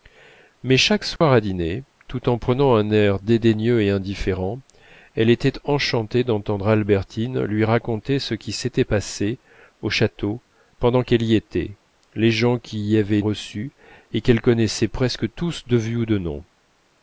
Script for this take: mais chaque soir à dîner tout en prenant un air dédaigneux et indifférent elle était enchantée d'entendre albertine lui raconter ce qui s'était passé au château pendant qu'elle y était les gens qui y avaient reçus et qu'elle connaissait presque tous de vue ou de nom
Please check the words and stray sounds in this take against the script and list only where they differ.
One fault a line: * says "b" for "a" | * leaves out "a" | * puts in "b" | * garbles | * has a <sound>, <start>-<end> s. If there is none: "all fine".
* has a dropout, 1.2-1.2 s